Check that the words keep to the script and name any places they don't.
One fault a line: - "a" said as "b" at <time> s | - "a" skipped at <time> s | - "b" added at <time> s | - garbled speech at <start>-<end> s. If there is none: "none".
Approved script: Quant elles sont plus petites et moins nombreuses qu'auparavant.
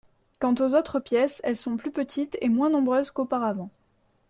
- "aux autres pièces" added at 0.6 s